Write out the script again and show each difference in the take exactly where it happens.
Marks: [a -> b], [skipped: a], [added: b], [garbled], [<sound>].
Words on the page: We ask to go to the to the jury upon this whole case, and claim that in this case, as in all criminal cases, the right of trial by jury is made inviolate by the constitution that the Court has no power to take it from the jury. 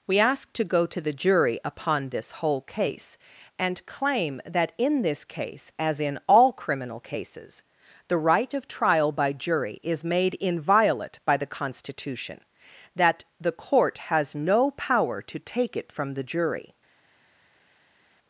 We ask to go to the [skipped: to the] jury upon this whole case, and claim that in this case, as in all criminal cases, the right of trial by jury is made inviolate by the constitution that the Court has no power to take it from the jury.